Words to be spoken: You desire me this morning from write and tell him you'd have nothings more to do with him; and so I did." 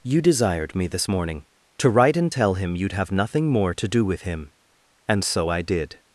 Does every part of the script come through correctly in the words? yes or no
no